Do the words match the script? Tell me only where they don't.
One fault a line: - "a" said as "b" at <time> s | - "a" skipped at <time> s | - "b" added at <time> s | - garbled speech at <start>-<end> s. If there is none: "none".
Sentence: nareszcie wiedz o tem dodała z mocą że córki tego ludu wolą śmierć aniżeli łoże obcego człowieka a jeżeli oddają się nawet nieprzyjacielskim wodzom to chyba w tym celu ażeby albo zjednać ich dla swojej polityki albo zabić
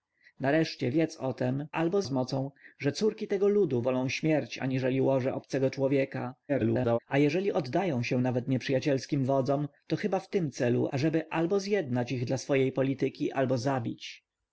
- "dodała" said as "albo" at 1.7 s
- garbled speech at 6.5-7.0 s